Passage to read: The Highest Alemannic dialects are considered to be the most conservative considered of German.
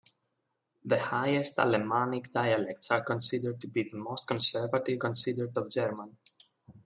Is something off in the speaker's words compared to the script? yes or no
no